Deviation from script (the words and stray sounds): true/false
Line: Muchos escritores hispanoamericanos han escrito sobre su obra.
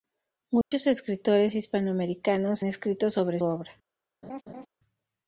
true